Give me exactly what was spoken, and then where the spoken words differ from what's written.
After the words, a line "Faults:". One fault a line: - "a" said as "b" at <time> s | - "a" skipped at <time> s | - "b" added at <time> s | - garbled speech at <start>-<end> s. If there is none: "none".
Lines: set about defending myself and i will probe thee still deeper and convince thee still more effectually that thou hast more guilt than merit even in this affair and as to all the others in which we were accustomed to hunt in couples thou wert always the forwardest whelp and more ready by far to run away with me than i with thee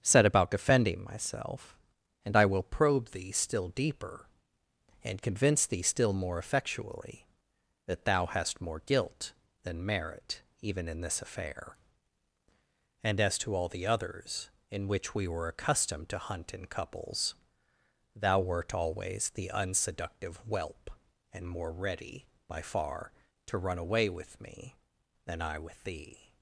set about defending myself and i will probe thee still deeper and convince thee still more effectually that thou hast more guilt than merit even in this affair and as to all the others in which we were accustomed to hunt in couples thou wert always the unseductive whelp and more ready by far to run away with me than i with thee
Faults:
- "forwardest" said as "unseductive" at 19.5 s